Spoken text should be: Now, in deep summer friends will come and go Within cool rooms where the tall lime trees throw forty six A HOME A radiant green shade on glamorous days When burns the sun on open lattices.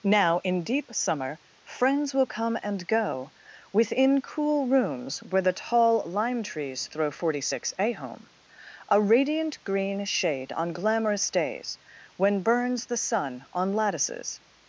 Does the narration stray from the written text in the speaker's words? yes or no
yes